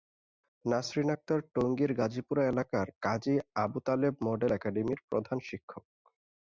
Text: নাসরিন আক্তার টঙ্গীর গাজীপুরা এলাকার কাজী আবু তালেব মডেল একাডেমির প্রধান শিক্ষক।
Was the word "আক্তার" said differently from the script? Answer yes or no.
no